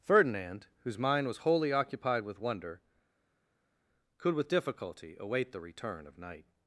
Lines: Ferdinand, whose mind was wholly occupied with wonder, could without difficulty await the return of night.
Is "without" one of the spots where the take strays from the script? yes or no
yes